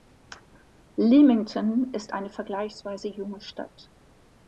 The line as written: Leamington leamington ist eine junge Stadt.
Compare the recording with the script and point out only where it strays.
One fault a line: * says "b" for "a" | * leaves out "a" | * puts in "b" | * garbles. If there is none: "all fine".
* leaves out "leamington"
* puts in "vergleichsweise"